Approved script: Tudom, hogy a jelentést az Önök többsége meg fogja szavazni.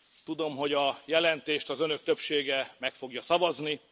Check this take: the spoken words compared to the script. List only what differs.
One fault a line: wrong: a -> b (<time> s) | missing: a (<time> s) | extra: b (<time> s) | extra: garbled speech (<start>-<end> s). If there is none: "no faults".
no faults